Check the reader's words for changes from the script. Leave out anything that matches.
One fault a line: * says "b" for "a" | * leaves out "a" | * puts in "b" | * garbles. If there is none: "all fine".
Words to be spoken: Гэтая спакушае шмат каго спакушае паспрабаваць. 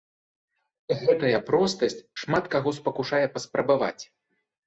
* says "простасць" for "спакушае"